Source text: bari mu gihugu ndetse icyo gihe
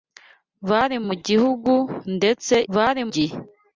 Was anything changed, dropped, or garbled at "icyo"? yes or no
yes